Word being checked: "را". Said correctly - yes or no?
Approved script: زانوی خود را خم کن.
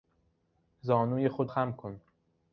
no